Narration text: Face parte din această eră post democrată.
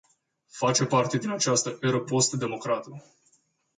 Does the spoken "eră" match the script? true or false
true